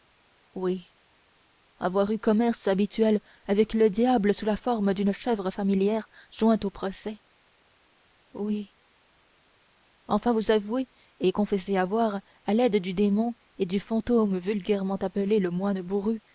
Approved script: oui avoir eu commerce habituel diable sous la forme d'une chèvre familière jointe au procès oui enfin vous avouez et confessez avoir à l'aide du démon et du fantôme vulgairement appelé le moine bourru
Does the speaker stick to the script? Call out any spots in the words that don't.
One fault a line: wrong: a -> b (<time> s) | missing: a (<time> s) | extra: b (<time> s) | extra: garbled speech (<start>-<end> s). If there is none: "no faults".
extra: avec le (3.5 s)